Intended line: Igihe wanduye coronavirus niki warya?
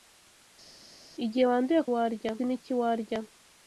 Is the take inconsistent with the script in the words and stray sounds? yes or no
yes